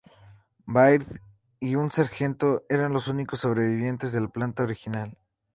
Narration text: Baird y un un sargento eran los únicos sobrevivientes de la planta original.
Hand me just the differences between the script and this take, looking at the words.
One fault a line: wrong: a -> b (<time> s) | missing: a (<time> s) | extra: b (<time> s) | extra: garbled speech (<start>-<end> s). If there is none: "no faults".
missing: un (1.9 s)